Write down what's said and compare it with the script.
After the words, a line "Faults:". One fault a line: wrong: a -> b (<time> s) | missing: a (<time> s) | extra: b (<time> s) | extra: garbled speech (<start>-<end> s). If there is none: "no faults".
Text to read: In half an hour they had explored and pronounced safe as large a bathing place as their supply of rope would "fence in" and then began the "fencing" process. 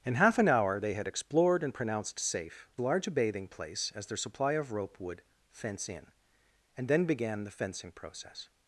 In half an hour they had explored and pronounced safe large a bathing place as their supply of rope would "fence in" and then began the "fencing" process.
Faults:
missing: as (2.7 s)